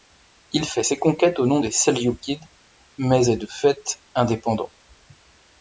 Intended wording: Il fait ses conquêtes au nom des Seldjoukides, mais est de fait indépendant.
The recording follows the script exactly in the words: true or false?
true